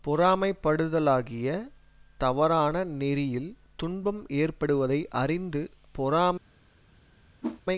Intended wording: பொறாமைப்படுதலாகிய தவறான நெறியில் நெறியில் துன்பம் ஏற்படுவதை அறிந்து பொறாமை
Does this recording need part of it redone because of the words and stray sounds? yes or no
yes